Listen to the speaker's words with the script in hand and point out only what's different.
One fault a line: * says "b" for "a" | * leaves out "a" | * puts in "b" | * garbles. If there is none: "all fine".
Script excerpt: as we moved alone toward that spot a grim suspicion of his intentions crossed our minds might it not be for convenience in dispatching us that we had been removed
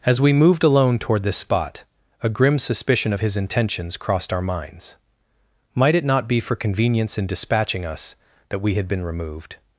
* says "this" for "that"